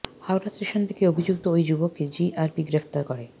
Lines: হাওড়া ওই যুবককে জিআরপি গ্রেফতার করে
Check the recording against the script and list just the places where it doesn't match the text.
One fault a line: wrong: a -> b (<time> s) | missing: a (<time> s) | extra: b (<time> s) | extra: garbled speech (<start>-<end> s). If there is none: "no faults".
extra: স্টেশন থেকে অভিযুক্ত (0.5 s)